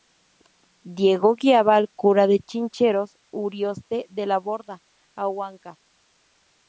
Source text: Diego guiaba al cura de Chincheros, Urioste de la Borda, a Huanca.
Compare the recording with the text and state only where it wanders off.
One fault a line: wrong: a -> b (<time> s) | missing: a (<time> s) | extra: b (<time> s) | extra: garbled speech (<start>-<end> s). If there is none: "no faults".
no faults